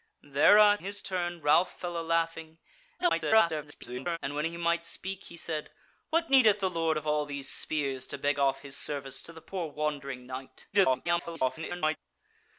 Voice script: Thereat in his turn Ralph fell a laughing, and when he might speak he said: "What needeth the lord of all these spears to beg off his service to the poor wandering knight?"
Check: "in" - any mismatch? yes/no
yes